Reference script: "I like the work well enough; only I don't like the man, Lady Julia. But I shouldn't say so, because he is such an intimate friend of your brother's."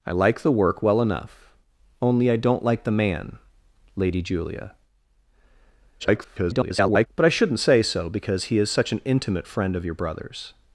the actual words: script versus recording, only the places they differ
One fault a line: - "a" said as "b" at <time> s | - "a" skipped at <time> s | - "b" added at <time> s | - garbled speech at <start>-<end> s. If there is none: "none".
- garbled speech at 6.0-7.1 s